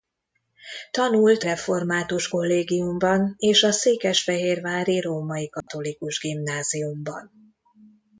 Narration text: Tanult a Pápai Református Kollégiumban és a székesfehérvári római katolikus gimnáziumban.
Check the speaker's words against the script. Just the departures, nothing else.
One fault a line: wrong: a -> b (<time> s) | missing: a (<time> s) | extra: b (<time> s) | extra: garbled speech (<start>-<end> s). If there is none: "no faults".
missing: a Pápai (1.4 s)